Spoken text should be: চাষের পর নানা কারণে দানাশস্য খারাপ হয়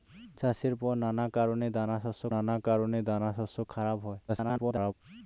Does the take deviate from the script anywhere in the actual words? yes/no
yes